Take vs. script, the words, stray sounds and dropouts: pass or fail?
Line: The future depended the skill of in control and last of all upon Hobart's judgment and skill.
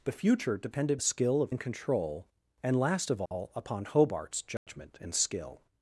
fail